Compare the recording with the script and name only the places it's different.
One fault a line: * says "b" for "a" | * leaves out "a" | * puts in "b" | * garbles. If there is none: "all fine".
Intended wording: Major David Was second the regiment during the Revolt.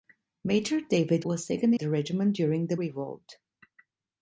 all fine